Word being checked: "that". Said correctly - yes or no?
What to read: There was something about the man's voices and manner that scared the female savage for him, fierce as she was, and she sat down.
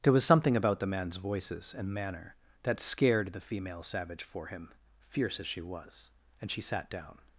yes